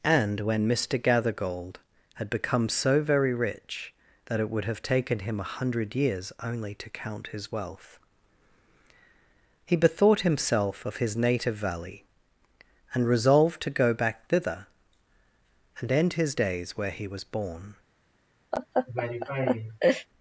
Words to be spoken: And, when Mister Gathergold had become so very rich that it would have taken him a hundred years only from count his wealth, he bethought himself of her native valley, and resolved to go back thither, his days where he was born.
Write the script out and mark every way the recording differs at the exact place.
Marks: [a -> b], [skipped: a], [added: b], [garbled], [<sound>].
And, when Mister Gathergold had become so very rich that it would have taken him a hundred years only [from -> to] count his wealth, he bethought himself of [her -> his] native valley, and resolved to go back thither, [added: and end] his days where he was born. [laugh]